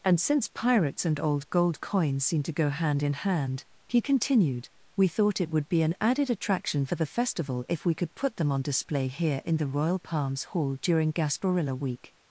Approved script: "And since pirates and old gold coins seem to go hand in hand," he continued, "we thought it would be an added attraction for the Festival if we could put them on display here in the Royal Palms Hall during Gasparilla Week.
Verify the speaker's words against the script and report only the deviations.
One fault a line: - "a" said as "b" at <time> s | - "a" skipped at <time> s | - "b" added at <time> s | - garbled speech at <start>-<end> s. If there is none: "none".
none